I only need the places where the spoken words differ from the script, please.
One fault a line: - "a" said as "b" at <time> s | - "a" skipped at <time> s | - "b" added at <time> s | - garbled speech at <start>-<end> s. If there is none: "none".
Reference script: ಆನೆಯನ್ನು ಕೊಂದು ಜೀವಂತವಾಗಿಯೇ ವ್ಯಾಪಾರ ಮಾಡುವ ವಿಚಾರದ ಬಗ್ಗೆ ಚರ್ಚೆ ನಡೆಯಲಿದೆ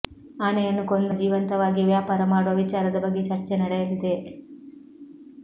none